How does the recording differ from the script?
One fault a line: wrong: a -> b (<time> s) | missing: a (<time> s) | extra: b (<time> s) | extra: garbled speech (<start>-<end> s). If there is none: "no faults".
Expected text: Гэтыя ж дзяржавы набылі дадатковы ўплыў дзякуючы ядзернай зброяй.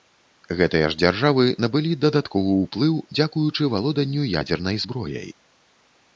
extra: валоданню (3.7 s)